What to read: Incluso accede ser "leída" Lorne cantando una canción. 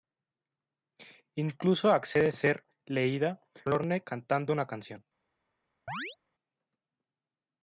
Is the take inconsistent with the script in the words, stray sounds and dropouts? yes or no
yes